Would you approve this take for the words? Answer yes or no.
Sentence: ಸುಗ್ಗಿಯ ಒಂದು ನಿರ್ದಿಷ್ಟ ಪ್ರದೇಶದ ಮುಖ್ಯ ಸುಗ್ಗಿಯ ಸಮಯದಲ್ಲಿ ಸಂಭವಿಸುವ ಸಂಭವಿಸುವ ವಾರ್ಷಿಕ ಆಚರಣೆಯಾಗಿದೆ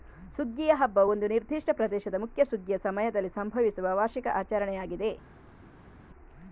no